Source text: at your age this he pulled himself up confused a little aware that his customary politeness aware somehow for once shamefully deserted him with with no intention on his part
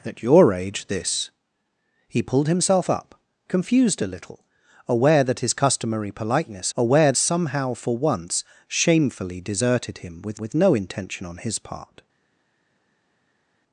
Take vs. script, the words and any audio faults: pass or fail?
pass